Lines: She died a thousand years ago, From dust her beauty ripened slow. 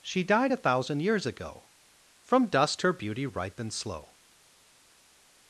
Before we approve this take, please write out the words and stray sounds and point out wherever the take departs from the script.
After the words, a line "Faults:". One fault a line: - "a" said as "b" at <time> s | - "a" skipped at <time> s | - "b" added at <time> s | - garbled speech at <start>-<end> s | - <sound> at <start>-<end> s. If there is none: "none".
She died a thousand years ago, From dust her beauty ripened slow.
Faults:
none